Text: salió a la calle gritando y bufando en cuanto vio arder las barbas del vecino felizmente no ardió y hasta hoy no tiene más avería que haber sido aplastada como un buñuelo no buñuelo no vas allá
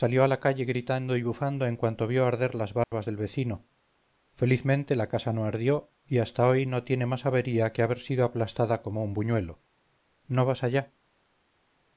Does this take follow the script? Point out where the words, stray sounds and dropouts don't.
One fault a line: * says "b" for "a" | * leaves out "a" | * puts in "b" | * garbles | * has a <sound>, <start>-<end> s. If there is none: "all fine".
* has a dropout, 2.8-2.9 s
* puts in "la casa"
* leaves out "buñuelo no"